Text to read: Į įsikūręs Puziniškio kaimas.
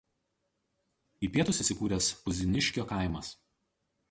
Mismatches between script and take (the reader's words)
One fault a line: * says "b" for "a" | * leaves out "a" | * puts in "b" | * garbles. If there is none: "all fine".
* puts in "pietus"